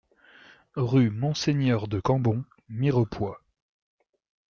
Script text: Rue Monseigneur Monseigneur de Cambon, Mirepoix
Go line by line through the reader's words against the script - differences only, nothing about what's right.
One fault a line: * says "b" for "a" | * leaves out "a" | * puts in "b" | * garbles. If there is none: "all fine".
* leaves out "Monseigneur"